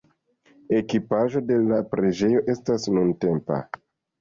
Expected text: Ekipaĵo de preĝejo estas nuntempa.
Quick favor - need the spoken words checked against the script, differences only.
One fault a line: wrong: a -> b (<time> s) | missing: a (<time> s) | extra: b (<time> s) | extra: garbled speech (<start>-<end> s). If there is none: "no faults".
extra: la (1.7 s)